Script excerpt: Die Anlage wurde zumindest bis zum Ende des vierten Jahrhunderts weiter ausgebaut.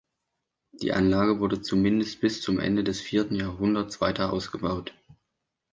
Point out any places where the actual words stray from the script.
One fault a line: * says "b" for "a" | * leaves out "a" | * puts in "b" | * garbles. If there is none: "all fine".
all fine